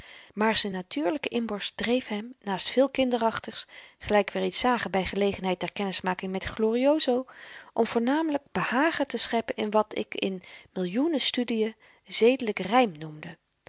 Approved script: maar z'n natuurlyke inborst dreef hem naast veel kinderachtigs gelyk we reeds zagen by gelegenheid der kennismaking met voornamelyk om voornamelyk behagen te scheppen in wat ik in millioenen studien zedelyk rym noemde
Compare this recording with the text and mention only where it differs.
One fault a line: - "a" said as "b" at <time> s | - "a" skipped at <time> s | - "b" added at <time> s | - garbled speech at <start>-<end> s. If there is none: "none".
- "voornamelyk" said as "glorioso" at 6.4 s